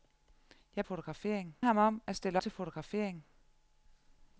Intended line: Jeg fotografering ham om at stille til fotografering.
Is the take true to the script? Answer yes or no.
yes